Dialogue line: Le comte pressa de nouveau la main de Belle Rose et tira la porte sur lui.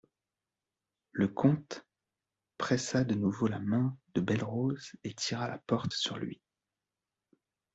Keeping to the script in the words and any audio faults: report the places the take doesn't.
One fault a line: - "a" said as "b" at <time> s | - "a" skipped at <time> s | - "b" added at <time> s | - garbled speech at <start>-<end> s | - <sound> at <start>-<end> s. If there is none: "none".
none